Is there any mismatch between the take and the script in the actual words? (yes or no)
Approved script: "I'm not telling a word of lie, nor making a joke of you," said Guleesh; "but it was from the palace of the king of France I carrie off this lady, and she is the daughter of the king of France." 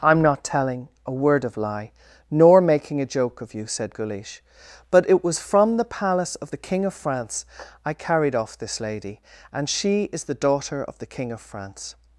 yes